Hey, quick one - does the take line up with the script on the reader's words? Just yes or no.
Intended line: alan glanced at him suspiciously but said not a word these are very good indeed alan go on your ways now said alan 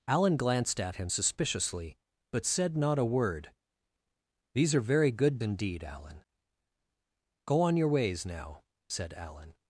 yes